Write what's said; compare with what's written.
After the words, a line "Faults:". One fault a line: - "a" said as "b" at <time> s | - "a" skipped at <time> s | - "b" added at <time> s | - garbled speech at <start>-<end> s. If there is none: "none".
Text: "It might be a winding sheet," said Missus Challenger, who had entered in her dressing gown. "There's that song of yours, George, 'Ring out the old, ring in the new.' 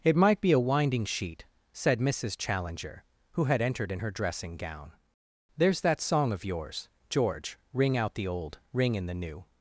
"It might be a winding sheet," said Missus Challenger, who had entered in her dressing gown. "There's that song of yours, George, 'Ring out the old, ring in the new.'
Faults:
none